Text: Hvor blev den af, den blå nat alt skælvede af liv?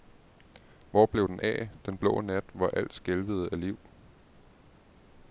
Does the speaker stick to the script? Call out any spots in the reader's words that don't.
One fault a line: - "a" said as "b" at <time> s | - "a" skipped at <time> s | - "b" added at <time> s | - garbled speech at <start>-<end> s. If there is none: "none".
- "hvor" added at 2.5 s